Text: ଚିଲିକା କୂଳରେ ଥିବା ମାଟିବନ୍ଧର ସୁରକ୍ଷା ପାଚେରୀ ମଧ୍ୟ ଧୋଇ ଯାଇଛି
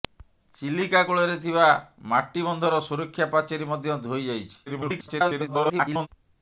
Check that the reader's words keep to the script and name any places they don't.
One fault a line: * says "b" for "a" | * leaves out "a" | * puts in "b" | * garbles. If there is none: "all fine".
* garbles